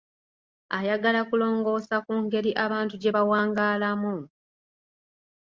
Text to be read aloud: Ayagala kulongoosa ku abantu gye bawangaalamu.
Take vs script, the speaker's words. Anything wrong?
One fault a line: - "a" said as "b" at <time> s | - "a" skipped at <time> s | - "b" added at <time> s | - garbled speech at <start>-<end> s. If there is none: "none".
- "ngeri" added at 2.2 s